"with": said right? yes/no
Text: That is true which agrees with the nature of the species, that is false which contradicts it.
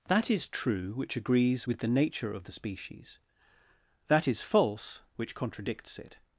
yes